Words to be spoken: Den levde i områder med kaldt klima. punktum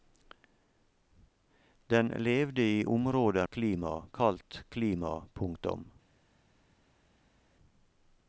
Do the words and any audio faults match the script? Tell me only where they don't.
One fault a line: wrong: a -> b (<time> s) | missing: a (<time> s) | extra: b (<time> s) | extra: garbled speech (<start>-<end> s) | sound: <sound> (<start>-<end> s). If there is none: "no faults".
wrong: med -> klima (3.5 s)